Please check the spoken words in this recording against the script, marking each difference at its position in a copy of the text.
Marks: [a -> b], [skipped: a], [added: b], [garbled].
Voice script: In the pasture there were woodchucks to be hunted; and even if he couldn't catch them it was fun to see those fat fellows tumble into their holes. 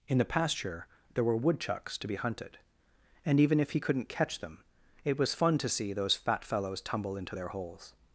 In the pasture there were woodchucks to be hunted; and even if he couldn't catch them it was fun to see those fat fellows tumble into their holes.